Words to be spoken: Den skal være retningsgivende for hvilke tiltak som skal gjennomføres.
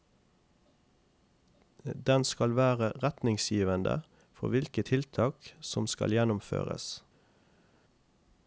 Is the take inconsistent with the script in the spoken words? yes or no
no